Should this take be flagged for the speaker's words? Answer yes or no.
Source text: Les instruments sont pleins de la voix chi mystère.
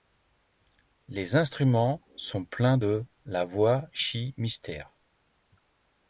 no